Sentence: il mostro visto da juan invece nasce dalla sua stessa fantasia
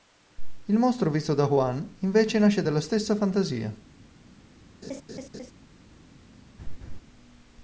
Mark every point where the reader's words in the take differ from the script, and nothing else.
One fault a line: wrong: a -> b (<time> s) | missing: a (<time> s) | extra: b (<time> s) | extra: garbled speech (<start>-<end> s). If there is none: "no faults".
missing: sua (2.8 s)